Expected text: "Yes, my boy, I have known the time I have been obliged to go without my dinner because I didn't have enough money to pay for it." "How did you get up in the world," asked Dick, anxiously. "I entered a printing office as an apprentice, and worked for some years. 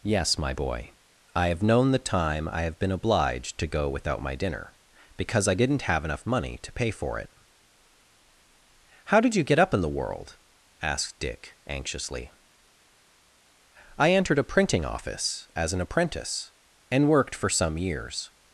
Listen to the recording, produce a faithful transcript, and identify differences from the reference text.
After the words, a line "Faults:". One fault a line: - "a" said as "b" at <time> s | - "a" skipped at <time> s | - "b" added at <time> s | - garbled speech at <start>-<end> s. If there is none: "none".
"Yes, my boy, I have known the time I have been obliged to go without my dinner because I didn't have enough money to pay for it." "How did you get up in the world," asked Dick, anxiously. "I entered a printing office as an apprentice, and worked for some years.
Faults:
none